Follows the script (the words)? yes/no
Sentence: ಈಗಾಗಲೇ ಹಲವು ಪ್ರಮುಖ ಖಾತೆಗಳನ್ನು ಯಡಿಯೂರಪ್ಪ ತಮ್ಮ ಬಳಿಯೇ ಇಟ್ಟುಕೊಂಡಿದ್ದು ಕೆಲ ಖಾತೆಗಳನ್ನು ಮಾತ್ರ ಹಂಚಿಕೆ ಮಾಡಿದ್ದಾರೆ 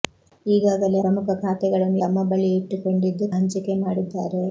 no